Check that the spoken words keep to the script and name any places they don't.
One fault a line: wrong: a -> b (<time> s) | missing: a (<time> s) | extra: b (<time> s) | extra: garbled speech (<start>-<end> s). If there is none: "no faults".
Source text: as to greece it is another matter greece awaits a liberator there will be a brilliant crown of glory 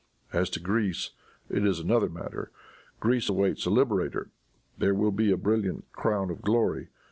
no faults